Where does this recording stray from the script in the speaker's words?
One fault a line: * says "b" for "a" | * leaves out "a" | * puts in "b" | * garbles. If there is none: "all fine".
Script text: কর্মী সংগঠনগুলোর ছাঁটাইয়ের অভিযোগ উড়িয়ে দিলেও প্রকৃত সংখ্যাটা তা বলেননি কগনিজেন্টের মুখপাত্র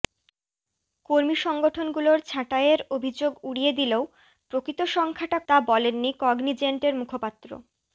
all fine